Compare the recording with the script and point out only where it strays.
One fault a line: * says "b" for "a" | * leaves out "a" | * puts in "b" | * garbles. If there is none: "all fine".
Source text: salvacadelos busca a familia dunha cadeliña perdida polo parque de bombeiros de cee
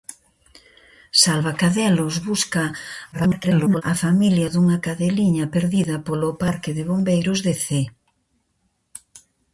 * garbles